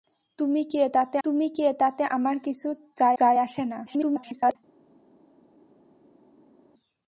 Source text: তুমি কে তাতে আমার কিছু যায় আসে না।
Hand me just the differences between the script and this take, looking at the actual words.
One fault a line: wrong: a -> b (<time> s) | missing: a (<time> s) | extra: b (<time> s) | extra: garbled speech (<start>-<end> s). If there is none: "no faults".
extra: তুমি কে তাতে (1.2 s)
extra: যায় (3.2 s)
extra: garbled speech (3.9-4.6 s)